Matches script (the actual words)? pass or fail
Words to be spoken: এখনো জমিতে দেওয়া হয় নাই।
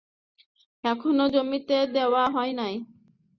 pass